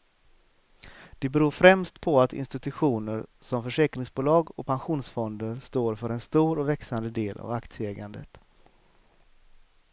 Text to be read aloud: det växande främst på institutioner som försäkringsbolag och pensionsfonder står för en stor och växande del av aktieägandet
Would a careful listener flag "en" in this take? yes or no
no